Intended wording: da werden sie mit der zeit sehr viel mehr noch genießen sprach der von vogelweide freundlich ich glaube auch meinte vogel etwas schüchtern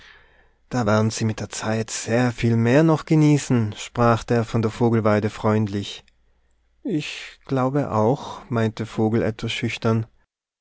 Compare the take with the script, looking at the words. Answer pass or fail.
fail